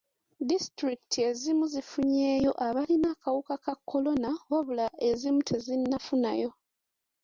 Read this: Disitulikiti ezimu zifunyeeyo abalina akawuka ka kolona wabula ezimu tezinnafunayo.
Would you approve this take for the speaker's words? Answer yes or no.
yes